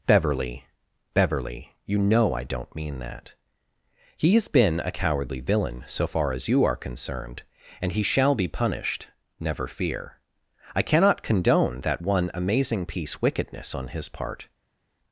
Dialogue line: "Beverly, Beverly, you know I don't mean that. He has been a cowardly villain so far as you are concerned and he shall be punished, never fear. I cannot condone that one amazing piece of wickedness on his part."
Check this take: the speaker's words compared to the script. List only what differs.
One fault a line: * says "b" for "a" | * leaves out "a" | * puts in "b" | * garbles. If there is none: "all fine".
* leaves out "of"